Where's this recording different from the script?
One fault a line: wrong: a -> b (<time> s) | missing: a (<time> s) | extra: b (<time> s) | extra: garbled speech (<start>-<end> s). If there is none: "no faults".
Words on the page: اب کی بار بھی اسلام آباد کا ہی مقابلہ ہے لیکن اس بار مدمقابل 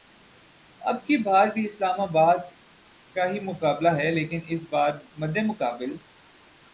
no faults